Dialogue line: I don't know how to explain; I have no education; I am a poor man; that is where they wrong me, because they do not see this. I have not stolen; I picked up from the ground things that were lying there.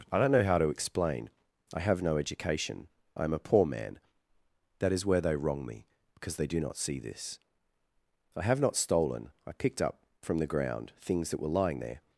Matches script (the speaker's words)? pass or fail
pass